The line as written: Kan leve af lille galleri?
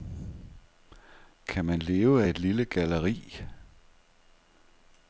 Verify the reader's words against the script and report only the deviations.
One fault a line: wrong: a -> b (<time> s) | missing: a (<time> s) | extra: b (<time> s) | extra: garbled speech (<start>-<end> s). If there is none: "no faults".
extra: man (1.6 s)
extra: et (2.3 s)